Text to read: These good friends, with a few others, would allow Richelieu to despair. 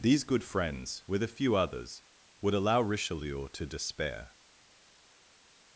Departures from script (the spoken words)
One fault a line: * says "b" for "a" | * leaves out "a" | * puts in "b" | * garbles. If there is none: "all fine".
all fine